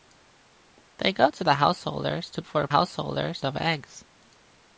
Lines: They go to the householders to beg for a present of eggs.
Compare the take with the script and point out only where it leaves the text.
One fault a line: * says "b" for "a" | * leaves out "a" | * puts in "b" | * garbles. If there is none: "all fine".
* leaves out "beg"
* says "householders" for "present"